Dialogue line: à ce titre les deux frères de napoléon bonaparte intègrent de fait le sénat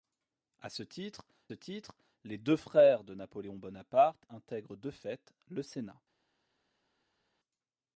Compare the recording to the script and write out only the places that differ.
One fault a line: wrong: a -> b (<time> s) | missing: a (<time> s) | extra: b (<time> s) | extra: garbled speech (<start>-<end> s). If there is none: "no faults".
extra: titre (1.5 s)